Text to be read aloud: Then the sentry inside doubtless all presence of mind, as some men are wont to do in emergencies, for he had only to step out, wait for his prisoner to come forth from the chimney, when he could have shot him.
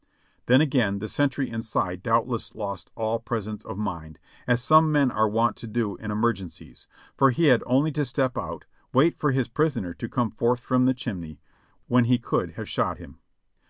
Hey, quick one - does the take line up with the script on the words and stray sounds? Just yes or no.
no